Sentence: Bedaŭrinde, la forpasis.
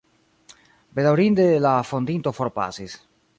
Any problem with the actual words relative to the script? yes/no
yes